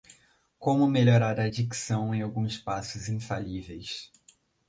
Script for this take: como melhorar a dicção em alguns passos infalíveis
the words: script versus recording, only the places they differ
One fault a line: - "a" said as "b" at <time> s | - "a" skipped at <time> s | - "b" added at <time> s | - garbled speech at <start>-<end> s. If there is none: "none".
none